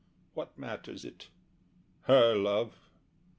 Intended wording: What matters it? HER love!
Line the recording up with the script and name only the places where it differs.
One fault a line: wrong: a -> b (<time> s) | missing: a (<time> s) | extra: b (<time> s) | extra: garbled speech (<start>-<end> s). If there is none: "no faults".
no faults